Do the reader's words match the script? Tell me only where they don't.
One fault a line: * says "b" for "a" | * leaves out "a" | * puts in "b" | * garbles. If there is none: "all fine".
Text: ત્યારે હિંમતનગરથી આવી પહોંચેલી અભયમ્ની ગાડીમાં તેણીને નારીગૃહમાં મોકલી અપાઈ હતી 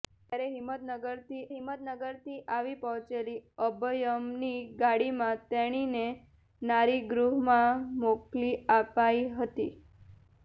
* puts in "હિંમતનગરથી"